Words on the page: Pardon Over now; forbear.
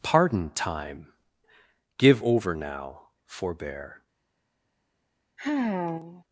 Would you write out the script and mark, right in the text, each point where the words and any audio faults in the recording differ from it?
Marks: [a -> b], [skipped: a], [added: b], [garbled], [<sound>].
Pardon [added: Time Give] Over now; forbear. [sigh]